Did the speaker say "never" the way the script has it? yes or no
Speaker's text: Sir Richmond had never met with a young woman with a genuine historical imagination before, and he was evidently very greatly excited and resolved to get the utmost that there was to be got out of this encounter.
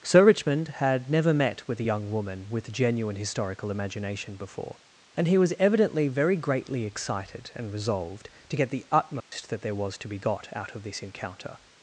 yes